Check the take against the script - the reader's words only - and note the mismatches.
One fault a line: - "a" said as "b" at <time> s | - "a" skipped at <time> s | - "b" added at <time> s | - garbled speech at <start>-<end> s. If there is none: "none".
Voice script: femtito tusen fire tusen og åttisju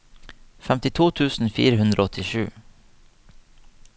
- "tusen" said as "hundre" at 1.8 s